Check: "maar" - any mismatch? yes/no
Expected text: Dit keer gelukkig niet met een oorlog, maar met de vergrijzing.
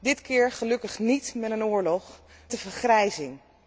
yes